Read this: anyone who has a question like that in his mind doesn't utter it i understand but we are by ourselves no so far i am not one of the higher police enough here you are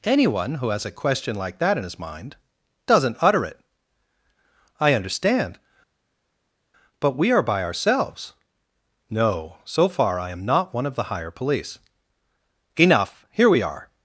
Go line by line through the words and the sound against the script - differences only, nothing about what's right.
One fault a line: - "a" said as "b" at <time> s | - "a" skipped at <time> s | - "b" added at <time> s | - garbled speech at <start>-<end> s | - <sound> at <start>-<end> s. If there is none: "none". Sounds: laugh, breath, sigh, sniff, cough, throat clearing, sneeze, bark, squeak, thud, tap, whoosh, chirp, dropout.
- "you" said as "we" at 13.5 s